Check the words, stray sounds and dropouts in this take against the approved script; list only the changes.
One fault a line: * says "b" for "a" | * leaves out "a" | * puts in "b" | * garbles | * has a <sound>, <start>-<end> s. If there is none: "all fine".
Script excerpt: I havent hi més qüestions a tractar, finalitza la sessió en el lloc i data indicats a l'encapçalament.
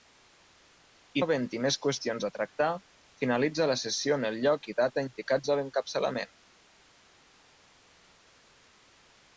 all fine